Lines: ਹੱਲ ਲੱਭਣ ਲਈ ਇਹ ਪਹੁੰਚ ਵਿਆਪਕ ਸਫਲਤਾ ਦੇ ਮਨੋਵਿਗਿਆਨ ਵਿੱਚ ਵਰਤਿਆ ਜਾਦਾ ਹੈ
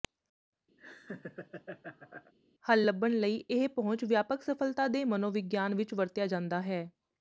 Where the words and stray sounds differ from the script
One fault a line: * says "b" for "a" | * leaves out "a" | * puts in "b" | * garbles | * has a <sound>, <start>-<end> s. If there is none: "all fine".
* has a laugh, 0.8-2.3 s